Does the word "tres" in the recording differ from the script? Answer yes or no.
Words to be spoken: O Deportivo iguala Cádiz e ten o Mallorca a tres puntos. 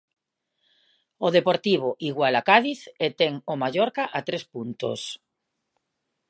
no